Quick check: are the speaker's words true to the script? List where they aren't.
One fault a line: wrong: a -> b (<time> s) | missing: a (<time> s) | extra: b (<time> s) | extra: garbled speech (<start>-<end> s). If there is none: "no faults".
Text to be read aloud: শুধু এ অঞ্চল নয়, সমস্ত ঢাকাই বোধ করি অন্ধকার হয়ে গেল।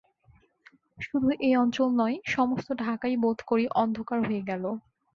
no faults